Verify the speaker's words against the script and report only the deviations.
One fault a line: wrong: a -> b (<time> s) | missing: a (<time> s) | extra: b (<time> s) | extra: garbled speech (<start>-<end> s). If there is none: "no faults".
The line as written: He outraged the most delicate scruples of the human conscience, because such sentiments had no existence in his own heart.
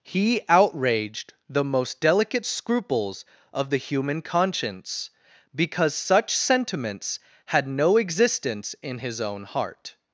no faults